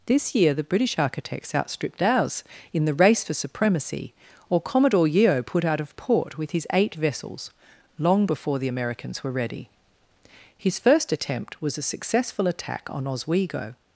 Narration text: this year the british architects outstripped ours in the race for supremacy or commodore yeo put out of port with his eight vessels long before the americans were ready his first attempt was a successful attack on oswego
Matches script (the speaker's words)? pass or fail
pass